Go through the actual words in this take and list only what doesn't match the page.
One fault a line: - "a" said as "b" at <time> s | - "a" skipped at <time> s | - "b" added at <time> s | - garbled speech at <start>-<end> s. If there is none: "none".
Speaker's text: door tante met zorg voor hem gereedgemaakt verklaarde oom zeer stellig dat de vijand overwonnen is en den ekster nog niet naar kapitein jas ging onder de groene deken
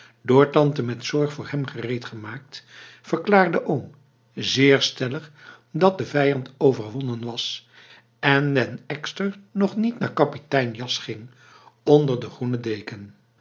- "is" said as "was" at 7.2 s